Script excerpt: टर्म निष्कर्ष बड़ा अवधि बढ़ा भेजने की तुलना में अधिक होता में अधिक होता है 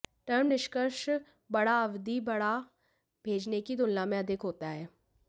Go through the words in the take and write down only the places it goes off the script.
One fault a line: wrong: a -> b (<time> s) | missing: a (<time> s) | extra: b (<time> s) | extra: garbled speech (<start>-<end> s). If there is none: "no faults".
missing: में अधिक होता (4.7 s)